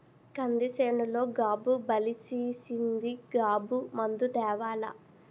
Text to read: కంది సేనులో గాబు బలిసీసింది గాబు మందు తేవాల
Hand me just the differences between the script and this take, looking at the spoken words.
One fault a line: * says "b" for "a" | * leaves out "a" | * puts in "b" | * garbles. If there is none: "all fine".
all fine